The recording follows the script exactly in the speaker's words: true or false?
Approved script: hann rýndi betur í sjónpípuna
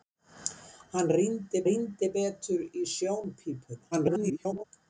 false